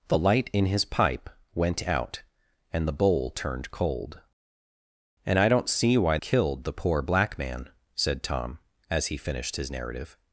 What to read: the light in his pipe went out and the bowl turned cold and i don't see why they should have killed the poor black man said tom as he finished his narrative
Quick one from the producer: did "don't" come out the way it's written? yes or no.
yes